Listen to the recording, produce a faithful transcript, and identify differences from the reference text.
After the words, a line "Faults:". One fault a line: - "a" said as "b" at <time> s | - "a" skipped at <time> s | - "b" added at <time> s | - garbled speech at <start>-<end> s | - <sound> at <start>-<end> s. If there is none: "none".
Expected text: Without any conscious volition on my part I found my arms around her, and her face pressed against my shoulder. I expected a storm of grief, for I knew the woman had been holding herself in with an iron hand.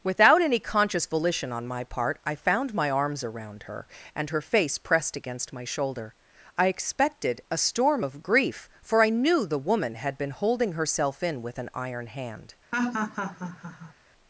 Without any conscious volition on my part I found my arms around her, and her face pressed against my shoulder. I expected a storm of grief, for I knew the woman had been holding herself in with an iron hand.
Faults:
- laugh at 12.7-13.9 s